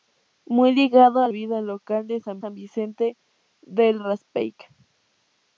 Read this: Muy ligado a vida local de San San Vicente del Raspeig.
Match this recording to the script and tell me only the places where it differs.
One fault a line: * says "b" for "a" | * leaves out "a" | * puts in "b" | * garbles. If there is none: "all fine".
all fine